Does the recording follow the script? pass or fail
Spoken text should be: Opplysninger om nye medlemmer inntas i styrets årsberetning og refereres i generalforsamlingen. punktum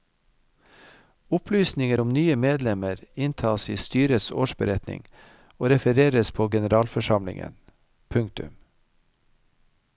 fail